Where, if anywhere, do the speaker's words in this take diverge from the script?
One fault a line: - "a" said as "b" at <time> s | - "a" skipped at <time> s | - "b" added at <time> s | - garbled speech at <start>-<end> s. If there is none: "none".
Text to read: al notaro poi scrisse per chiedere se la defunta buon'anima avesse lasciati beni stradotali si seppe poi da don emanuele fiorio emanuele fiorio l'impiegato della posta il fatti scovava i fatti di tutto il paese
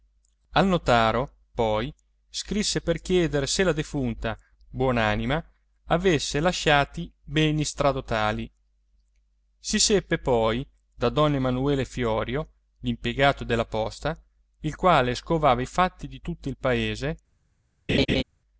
- "emanuele fiorio" skipped at 12.5 s
- "fatti" said as "quale" at 14.8 s